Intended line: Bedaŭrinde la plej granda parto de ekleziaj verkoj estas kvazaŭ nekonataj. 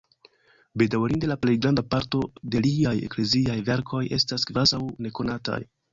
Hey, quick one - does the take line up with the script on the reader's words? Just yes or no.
no